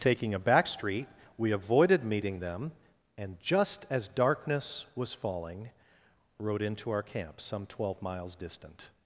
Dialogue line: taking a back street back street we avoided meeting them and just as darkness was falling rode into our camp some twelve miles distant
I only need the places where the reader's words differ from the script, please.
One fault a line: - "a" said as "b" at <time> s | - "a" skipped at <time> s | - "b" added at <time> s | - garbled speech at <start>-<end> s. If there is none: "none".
- "back street" skipped at 1.1 s